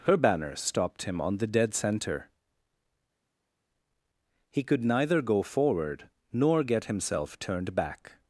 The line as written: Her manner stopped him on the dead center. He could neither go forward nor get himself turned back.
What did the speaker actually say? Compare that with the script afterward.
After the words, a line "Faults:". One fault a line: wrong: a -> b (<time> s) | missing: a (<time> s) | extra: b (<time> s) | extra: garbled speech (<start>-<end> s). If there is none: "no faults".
Her banner stopped him on the dead center. He could neither go forward nor get himself turned back.
Faults:
wrong: manner -> banner (0.2 s)